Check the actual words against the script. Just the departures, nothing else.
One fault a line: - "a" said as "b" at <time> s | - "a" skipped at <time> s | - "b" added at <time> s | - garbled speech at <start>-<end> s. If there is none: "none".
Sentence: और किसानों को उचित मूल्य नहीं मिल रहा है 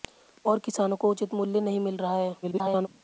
- garbled speech at 2.4-2.9 s